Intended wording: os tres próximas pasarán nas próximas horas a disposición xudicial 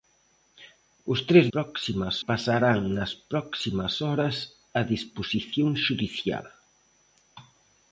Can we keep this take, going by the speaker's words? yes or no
yes